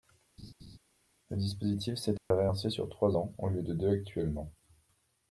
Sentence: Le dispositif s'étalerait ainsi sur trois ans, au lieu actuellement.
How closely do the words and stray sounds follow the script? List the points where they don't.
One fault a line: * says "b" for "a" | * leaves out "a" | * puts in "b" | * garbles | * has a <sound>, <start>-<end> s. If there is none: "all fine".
* has a laugh, 0.4-0.8 s
* has a dropout, 2.2-2.3 s
* puts in "de deux"